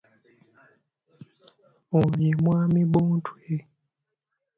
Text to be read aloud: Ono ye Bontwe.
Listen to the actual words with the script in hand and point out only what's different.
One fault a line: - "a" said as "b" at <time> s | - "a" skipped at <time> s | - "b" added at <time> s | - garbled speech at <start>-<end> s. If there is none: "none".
- "mwami" added at 2.4 s